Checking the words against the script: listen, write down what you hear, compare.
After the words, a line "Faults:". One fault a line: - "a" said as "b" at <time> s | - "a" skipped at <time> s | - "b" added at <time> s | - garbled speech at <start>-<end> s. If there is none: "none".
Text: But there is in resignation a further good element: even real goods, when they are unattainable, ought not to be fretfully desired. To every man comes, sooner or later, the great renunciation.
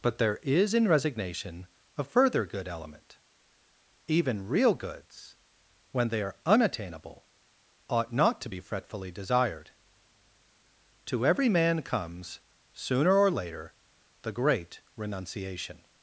But there is in resignation a further good element: even real goods, when they are unattainable, ought not to be fretfully desired. To every man comes, sooner or later, the great renunciation.
Faults:
none